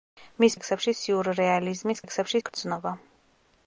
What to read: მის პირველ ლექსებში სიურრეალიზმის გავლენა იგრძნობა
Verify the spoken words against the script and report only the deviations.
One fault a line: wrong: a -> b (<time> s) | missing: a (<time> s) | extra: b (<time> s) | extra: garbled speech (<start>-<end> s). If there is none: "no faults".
missing: პირველ (0.6 s)
wrong: გავლენა -> ლექსებში (2.0 s)